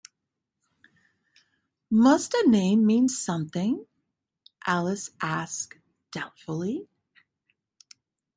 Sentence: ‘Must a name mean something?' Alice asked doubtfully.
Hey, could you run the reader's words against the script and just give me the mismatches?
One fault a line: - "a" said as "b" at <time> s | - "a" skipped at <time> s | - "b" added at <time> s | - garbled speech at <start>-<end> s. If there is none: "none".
none